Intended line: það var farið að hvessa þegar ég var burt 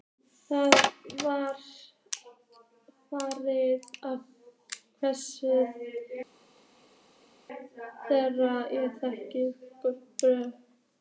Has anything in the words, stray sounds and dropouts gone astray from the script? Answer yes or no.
yes